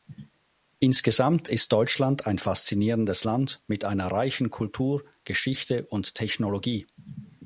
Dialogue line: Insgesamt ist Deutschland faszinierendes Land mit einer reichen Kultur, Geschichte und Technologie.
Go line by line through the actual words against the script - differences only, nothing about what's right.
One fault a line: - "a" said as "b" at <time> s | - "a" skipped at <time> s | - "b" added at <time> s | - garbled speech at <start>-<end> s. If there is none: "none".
- "ein" added at 2.2 s